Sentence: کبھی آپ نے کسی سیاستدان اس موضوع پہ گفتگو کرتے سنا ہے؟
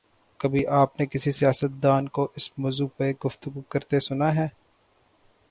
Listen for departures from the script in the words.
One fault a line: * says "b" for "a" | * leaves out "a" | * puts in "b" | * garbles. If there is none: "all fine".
* puts in "کو"